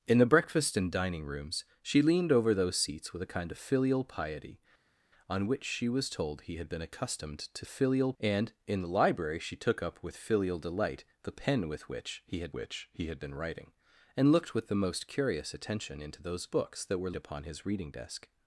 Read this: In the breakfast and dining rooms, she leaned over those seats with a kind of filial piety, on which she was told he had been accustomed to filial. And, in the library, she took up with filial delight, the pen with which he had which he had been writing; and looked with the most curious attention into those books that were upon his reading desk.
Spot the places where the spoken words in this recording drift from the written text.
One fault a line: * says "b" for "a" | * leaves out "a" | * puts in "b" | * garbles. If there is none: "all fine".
all fine